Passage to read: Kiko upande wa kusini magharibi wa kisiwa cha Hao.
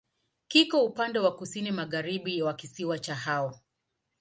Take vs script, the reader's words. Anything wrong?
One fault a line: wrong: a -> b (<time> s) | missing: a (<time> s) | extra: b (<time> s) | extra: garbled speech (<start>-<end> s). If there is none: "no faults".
no faults